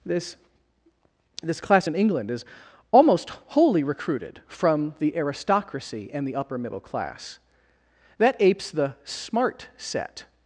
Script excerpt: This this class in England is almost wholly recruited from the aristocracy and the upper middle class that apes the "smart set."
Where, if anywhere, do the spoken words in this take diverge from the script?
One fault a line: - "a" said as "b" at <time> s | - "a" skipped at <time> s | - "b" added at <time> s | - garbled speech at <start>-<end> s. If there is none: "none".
none